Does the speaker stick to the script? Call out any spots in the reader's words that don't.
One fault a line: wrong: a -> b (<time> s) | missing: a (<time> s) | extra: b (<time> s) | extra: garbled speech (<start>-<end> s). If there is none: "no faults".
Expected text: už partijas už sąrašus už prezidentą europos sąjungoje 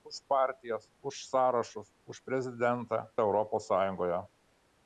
no faults